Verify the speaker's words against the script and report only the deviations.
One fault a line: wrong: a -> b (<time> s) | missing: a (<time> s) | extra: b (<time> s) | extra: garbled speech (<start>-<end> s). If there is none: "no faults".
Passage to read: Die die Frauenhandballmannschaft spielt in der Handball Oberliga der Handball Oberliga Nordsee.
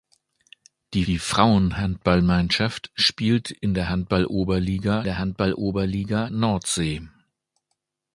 no faults